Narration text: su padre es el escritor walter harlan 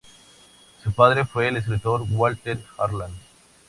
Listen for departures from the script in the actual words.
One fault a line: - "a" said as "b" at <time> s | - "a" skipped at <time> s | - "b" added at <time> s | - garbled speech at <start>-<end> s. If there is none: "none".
- "es" said as "fue" at 1.2 s